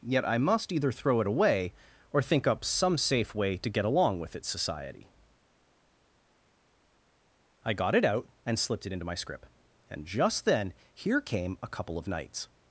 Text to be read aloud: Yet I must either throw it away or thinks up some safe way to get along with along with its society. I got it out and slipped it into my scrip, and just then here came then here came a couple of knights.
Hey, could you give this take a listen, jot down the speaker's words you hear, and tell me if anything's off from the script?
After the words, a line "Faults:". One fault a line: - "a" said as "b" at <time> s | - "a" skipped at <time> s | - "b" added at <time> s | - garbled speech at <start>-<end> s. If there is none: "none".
Yet I must either throw it away or think up some safe way to get along with its society. I got it out and slipped it into my scrip, and just then here came a couple of knights.
Faults:
- "thinks" said as "think" at 2.2 s
- "along with" skipped at 4.3 s
- "then here came" skipped at 11.6 s